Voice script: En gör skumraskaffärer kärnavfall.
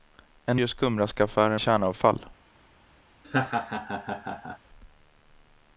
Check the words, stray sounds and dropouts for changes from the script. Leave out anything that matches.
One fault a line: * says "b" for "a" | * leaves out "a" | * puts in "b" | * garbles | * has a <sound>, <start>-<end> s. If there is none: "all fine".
* has a laugh, 3.2-4.6 s